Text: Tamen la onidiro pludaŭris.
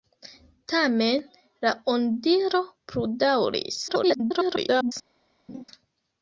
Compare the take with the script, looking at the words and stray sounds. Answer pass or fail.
fail